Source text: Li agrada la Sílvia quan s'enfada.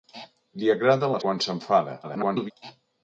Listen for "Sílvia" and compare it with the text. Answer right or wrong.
wrong